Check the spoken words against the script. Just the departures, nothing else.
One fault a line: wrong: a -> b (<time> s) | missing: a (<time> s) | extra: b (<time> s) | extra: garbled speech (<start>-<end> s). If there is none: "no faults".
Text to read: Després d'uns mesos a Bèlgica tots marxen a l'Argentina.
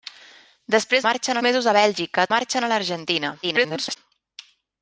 wrong: d'uns -> marxen (1.1 s)
missing: tots (2.3 s)
extra: garbled speech (3.4-4.0 s)